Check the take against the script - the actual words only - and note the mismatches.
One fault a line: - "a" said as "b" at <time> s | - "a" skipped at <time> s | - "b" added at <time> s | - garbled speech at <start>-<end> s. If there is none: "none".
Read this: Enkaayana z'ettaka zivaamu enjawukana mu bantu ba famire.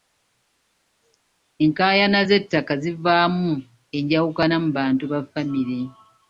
none